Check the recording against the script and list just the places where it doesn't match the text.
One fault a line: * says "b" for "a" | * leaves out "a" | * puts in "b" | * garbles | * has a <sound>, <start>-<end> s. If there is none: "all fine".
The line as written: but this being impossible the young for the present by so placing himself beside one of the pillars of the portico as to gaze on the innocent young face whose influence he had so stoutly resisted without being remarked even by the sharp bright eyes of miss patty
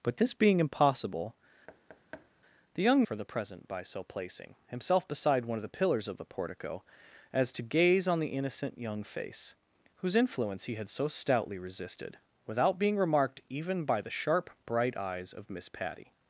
* has a thud, 1.7-2.3 s